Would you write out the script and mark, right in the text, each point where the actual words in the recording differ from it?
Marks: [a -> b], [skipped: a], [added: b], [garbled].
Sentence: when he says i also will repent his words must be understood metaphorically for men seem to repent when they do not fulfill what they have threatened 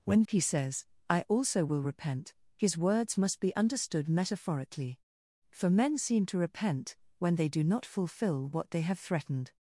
when he says i also will repent his words must be understood metaphorically for men seem to repent when they do not fulfill what they have threatened